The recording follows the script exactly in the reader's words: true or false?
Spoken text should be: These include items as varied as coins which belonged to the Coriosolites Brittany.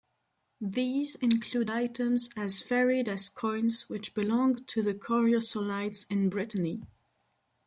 false